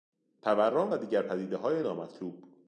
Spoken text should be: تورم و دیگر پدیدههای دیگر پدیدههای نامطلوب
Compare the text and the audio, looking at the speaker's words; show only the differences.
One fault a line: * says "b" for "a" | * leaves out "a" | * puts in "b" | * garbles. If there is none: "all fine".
* leaves out "دیگر پدیدههای"